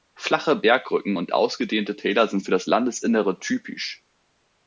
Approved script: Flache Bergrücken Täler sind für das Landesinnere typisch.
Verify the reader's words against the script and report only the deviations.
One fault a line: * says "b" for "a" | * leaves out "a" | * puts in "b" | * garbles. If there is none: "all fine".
* puts in "und ausgedehnte"